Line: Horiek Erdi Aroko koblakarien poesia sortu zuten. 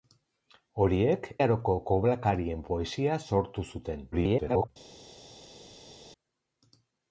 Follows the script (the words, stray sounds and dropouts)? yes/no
no